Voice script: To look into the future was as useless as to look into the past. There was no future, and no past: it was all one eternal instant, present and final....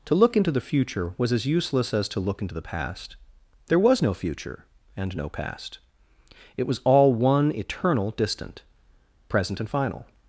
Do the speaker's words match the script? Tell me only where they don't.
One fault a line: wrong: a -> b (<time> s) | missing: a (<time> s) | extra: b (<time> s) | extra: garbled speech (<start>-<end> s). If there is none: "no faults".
wrong: instant -> distant (8.1 s)